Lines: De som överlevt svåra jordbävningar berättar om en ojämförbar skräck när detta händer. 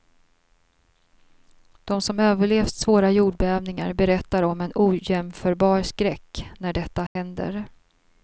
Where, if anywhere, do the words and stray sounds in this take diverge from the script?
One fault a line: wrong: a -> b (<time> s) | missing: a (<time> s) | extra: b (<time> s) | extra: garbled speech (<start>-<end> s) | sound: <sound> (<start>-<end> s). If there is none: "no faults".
sound: dropout (7.1-7.2 s)